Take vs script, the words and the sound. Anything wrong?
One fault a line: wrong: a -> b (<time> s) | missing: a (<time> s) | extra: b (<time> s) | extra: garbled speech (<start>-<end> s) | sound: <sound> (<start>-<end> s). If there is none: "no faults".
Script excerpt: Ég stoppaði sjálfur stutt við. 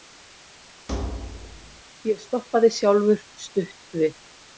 sound: thud (0.9-1.8 s)